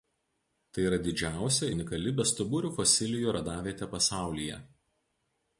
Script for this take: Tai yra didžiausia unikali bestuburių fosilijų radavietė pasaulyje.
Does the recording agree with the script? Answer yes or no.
yes